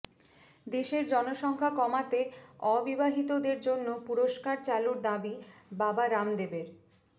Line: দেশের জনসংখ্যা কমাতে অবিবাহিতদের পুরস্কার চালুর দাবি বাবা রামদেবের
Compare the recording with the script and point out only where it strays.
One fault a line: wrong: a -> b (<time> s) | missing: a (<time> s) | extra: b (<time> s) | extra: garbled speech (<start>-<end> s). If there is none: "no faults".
extra: জন্য (3.6 s)